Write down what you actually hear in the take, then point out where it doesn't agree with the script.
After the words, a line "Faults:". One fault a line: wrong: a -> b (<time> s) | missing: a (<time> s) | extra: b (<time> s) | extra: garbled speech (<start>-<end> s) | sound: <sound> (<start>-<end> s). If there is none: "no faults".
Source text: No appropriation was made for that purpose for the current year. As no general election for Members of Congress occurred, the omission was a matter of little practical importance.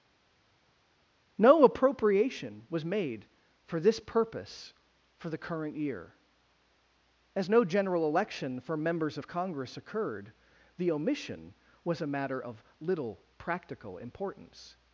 No appropriation was made for this purpose for the current year. As no general election for Members of Congress occurred, the omission was a matter of little practical importance.
Faults:
wrong: that -> this (3.8 s)